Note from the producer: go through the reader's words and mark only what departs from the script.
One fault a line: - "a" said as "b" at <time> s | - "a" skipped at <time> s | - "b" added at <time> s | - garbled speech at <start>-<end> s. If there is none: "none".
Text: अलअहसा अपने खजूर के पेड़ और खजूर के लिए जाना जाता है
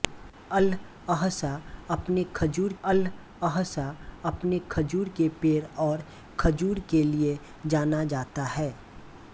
- "अलअहसा अपने खजूर" added at 2.8 s